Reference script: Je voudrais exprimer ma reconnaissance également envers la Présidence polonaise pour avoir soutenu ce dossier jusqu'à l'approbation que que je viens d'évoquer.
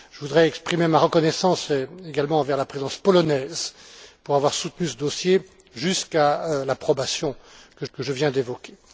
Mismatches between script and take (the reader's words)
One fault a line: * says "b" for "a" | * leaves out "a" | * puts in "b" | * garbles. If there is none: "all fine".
all fine